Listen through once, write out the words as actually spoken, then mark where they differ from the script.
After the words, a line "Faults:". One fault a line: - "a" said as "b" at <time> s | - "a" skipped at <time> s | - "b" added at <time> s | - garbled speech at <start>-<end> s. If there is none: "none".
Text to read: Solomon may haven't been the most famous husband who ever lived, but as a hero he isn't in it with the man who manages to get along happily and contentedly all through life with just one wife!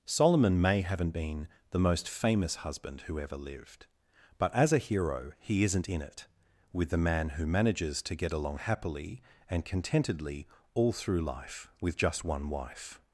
Solomon may haven't been the most famous husband who ever lived, but as a hero he isn't in it with the man who manages to get along happily and contentedly all through life with just one wife!
Faults:
none